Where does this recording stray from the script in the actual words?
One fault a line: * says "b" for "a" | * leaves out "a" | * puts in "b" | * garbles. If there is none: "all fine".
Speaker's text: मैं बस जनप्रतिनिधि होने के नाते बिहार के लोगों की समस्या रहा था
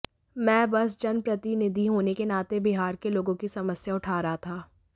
* puts in "उठा"